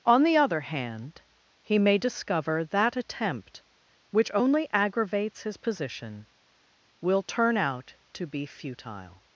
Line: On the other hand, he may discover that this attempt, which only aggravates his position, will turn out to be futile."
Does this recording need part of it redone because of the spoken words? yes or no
yes